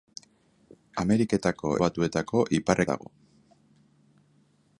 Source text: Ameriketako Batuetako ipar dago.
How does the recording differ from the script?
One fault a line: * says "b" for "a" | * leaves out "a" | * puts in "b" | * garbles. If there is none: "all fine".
all fine